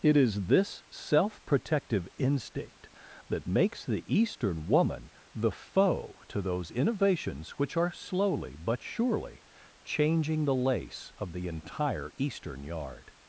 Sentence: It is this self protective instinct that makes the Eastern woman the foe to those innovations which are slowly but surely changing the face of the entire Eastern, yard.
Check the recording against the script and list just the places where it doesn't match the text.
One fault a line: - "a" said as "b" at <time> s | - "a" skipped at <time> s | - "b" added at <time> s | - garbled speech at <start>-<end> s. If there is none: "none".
- "face" said as "lace" at 10.5 s